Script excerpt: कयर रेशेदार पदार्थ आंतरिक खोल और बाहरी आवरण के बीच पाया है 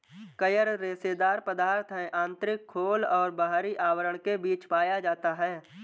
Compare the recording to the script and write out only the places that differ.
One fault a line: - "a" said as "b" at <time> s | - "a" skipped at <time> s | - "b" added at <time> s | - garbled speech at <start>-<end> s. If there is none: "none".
- "है" added at 1.9 s
- "जाता" added at 5.0 s